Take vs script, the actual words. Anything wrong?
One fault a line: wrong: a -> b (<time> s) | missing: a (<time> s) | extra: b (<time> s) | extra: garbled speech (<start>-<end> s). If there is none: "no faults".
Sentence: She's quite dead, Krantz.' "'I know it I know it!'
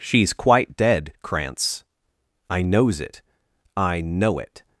wrong: know -> knows (2.6 s)